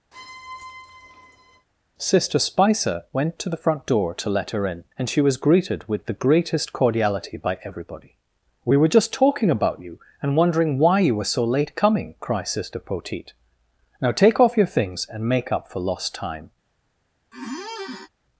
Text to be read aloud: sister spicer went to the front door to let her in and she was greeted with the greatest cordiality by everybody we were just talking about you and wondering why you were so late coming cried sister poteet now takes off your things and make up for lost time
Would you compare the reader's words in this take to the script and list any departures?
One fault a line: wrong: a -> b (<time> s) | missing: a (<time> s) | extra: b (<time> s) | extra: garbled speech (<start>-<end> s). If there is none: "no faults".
wrong: takes -> take (14.1 s)